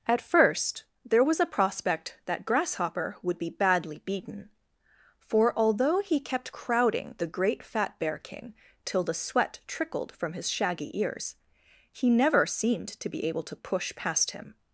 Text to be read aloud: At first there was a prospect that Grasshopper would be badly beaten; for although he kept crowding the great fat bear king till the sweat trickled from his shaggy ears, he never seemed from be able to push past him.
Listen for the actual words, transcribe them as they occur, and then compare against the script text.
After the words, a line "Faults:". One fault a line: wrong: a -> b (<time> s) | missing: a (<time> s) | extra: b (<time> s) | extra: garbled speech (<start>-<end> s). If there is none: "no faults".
At first there was a prospect that Grasshopper would be badly beaten; for although he kept crowding the great fat bear king till the sweat trickled from his shaggy ears, he never seemed to be able to push past him.
Faults:
wrong: from -> to (12.9 s)